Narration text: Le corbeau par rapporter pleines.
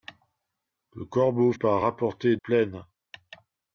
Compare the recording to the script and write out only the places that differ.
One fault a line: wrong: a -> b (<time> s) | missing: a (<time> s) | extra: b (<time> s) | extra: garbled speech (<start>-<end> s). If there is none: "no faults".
no faults